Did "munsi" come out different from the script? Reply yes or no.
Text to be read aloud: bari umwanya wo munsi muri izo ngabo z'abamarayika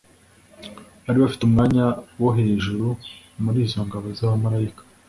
yes